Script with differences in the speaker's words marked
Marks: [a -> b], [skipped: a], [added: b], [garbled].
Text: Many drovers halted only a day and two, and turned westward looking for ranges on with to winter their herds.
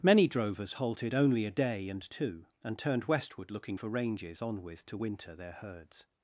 Many drovers halted only a day and two, and turned westward looking for ranges on with to winter their herds.